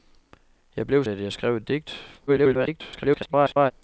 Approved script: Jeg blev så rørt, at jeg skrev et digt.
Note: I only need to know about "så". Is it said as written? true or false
false